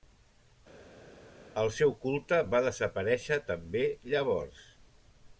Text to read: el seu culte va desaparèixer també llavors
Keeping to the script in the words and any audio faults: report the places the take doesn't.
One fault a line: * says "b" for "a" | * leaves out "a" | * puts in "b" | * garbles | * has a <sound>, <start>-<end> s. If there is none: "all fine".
all fine